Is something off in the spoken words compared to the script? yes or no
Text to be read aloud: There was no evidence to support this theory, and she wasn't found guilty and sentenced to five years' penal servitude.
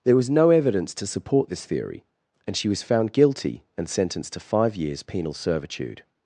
yes